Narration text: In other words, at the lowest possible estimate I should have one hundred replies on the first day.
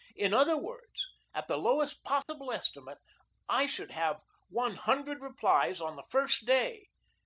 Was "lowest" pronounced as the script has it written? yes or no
yes